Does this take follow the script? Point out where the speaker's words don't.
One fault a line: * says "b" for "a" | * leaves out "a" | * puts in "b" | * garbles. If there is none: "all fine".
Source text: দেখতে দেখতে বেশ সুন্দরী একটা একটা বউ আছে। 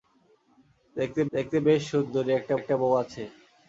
all fine